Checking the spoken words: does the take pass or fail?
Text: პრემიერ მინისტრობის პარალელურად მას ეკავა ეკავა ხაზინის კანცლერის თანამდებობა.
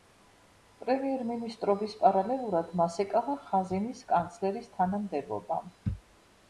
fail